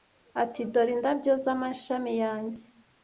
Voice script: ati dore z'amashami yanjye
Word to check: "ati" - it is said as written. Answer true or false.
true